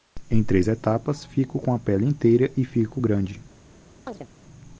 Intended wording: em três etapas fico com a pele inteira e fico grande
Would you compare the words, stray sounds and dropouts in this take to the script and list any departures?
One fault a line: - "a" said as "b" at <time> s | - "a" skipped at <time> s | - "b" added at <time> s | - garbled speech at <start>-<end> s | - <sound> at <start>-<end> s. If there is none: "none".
- chirp at 4.1-4.3 s